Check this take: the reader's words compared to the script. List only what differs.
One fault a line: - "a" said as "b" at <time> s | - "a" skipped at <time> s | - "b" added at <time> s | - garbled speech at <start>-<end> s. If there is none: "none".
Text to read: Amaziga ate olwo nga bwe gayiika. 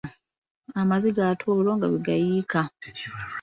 none